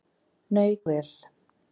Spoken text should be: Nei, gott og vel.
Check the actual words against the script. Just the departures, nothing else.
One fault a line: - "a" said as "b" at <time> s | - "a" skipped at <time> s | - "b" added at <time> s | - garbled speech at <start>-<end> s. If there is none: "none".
- "gott" skipped at 0.8 s